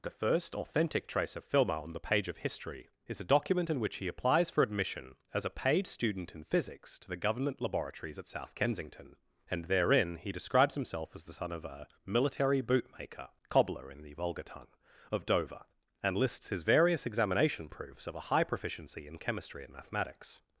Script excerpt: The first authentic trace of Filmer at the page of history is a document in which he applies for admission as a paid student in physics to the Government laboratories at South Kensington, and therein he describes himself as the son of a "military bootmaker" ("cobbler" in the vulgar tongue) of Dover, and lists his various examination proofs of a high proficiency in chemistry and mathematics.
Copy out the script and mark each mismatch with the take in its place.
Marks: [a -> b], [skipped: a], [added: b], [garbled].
The first authentic trace of Filmer [at -> on] the page of history is a document in which he applies for admission as a paid student in physics to the Government laboratories at South Kensington, and therein he describes himself as the son of a "military bootmaker" ("cobbler" in the vulgar tongue) of Dover, and lists his various examination proofs of a high proficiency in chemistry and mathematics.